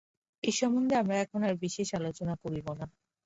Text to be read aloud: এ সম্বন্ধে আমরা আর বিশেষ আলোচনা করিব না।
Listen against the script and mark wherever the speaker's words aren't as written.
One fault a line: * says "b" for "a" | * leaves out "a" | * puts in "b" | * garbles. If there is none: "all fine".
* puts in "এখন"